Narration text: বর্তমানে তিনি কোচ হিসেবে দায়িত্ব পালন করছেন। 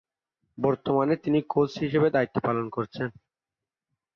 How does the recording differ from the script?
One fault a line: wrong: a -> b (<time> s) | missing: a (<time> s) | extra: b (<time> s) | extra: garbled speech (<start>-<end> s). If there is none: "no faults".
no faults